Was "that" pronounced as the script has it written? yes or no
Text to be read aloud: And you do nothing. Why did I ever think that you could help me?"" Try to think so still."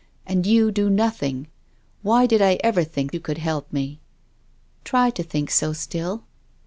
no